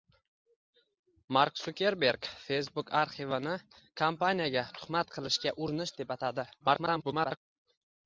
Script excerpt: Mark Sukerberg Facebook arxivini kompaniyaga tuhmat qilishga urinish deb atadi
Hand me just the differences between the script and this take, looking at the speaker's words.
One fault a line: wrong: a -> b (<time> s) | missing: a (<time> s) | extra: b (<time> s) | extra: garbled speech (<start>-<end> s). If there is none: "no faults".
extra: garbled speech (6.6-7.4 s)